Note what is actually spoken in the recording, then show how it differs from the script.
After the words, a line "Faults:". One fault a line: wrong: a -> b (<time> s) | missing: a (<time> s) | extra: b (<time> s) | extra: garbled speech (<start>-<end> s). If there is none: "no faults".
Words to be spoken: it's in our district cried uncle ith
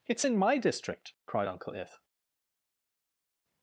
it's in my district cried uncle ith
Faults:
wrong: our -> my (0.4 s)